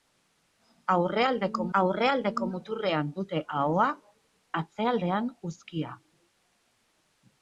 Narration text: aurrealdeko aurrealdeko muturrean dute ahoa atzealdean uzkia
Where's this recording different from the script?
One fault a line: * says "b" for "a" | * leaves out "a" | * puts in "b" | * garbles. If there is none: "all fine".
all fine